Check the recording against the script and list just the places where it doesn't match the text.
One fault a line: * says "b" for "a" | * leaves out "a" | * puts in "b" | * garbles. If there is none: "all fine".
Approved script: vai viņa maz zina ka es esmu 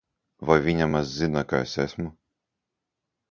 all fine